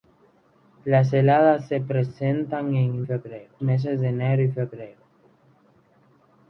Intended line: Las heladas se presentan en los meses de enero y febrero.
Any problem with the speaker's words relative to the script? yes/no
yes